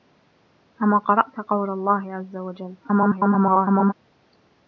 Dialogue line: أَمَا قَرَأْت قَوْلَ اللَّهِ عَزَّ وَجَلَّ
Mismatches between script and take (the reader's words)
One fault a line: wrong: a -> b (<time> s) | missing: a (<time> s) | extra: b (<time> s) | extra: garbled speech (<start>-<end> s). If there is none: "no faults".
extra: garbled speech (2.8-3.9 s)